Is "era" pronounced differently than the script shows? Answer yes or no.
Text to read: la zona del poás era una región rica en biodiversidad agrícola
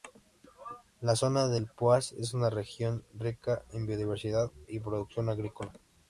yes